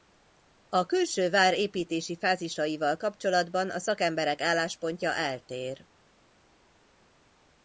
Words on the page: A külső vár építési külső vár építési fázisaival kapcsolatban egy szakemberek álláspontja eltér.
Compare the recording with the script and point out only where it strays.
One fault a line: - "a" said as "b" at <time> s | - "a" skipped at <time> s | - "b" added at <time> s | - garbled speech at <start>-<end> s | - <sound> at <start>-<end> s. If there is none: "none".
- "külső vár építési" skipped at 2.2 s
- "egy" said as "a" at 3.7 s